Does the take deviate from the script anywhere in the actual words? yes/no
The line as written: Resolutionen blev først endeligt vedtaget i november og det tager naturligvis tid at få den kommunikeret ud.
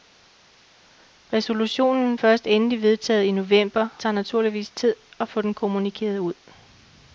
yes